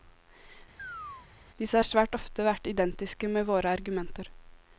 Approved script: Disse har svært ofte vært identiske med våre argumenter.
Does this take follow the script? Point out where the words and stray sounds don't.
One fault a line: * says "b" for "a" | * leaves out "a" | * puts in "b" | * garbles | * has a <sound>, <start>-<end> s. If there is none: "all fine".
* has a chirp, 0.8-1.3 s